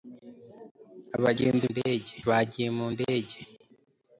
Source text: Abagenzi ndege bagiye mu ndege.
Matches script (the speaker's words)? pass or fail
pass